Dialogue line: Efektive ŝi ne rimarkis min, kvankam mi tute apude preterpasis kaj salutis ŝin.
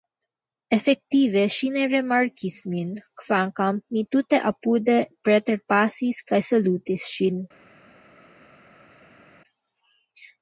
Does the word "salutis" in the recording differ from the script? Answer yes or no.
no